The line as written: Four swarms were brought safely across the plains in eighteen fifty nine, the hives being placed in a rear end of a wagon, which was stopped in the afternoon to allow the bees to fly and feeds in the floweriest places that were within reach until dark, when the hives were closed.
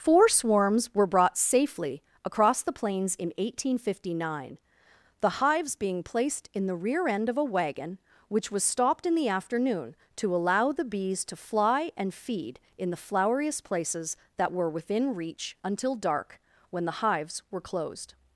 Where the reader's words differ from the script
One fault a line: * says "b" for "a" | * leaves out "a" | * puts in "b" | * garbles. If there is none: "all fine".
* says "the" for "a"
* says "feed" for "feeds"